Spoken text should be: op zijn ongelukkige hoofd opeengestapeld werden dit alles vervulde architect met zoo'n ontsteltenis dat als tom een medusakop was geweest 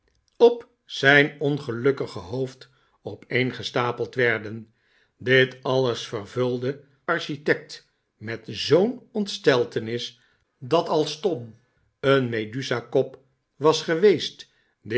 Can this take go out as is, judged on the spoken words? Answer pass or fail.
pass